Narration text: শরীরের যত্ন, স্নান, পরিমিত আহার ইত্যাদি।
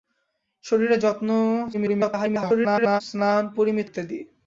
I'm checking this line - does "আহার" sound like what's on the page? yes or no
no